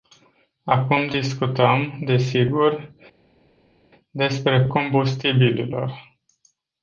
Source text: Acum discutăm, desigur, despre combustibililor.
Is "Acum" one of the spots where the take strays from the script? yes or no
no